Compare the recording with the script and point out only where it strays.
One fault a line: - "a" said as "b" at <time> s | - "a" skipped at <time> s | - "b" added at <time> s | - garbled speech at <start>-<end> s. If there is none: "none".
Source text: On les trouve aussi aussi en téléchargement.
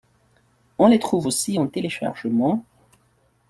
- "aussi" skipped at 1.6 s